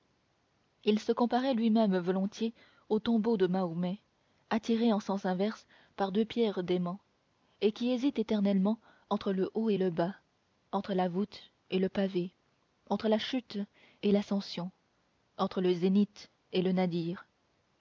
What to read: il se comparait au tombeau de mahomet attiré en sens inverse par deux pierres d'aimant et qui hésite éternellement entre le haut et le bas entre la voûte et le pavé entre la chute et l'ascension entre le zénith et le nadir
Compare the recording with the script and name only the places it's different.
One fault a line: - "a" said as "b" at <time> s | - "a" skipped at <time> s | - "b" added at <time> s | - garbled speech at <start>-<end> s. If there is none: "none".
- "lui même volontiers" added at 1.5 s